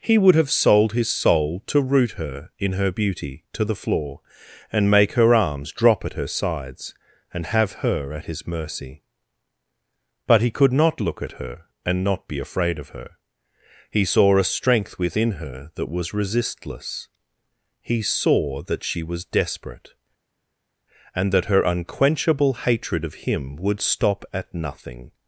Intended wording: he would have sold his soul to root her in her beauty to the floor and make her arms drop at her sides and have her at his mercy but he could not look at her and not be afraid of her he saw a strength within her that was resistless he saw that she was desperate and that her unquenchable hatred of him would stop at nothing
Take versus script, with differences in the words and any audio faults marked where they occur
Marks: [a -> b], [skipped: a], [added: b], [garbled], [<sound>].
he would have sold his soul to root her in her beauty to the floor and make her arms drop at her sides and have her at his mercy but he could not look at her and not be afraid of her he saw a strength within her that was resistless he saw that she was desperate and that her unquenchable hatred of him would stop at nothing